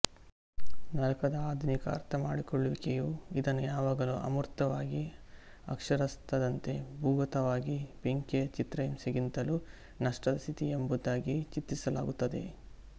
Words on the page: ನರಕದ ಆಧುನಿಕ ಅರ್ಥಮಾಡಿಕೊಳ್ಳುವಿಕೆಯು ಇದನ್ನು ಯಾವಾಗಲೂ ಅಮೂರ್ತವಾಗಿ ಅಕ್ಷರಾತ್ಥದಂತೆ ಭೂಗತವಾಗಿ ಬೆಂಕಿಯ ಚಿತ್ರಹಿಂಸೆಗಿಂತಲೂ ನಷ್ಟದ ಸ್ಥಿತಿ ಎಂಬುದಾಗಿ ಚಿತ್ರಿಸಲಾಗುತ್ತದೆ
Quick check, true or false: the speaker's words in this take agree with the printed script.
true